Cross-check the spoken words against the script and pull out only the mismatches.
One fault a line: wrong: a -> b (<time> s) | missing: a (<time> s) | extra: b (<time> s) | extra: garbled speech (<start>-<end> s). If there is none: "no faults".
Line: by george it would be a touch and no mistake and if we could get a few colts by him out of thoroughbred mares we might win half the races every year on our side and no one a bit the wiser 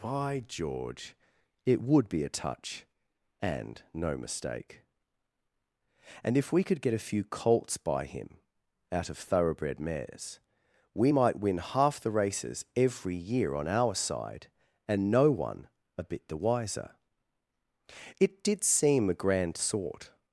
extra: it did seem a grand sort (18.2 s)